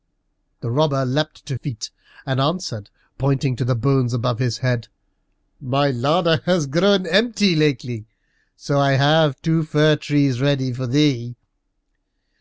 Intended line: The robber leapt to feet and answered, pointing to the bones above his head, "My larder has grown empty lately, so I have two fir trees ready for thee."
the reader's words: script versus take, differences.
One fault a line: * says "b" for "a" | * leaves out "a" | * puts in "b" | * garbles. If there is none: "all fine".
all fine